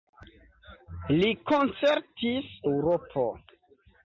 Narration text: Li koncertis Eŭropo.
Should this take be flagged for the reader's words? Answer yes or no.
no